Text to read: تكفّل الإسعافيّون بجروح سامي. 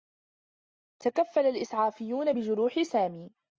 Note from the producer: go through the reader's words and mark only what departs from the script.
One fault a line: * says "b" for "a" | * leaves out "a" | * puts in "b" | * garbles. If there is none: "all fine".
all fine